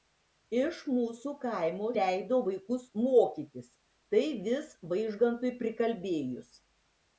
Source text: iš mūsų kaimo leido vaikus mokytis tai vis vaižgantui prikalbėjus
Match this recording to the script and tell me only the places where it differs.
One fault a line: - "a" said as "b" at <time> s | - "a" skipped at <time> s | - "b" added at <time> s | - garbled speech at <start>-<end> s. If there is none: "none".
none